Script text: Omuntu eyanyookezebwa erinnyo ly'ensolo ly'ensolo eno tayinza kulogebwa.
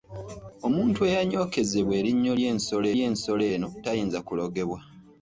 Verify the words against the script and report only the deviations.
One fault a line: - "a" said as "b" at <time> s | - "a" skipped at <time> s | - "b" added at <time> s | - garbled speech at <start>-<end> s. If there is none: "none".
none